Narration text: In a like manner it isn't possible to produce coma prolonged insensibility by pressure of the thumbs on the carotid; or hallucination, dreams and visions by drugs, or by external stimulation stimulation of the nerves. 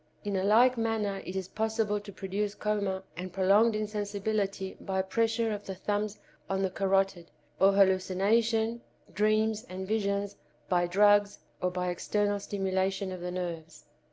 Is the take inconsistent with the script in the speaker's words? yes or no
yes